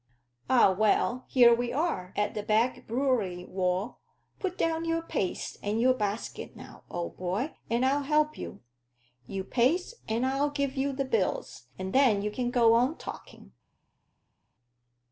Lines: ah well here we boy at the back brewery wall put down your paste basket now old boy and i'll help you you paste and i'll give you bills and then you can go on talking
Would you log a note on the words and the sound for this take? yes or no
yes